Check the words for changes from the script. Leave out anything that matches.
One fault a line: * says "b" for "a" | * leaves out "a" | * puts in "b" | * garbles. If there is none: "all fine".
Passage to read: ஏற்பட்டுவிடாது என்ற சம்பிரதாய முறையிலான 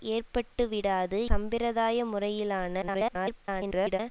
* leaves out "என்ற"
* garbles